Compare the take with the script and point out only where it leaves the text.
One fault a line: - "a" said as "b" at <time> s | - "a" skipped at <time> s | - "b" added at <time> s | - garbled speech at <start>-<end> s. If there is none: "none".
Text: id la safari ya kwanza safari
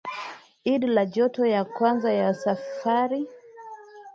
- "safari" said as "joto" at 1.1 s
- "ya" added at 2.1 s